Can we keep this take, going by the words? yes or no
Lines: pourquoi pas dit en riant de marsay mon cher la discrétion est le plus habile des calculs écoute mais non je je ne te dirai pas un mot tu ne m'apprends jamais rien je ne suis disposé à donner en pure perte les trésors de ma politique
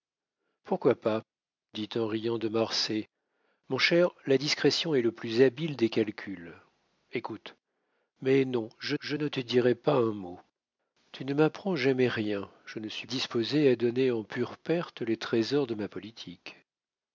yes